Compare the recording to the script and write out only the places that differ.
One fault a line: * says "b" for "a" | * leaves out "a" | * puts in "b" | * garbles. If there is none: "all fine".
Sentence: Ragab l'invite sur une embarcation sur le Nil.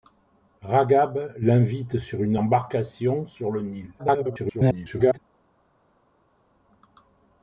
* garbles